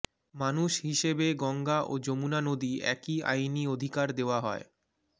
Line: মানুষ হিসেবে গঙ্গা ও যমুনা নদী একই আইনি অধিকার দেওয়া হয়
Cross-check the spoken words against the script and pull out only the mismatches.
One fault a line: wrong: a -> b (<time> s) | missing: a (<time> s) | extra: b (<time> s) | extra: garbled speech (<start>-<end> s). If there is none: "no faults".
no faults